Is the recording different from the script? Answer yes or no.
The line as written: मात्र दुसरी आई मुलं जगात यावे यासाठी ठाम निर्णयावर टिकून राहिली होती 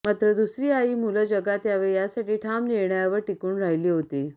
no